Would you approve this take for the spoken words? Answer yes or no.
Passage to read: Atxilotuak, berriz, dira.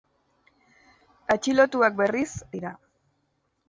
yes